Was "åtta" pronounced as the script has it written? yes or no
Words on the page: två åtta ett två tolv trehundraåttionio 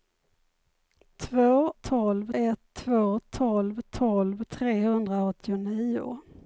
no